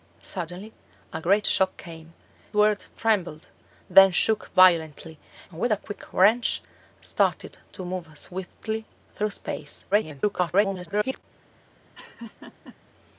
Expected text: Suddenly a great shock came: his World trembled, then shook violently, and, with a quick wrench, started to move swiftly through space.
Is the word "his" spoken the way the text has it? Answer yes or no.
no